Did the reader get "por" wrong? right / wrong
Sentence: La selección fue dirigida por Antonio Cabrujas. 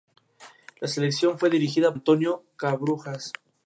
wrong